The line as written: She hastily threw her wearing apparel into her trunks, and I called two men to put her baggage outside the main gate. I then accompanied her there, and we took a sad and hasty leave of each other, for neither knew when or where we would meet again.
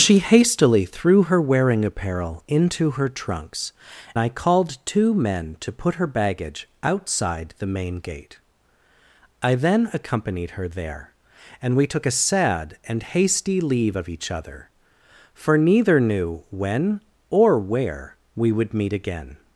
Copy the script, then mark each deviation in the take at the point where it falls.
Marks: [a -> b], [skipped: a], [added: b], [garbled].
She hastily threw her wearing apparel into her trunks, [skipped: and] I called two men to put her baggage outside the main gate. I then accompanied her there, and we took a sad and hasty leave of each other, for neither knew when or where we would meet again.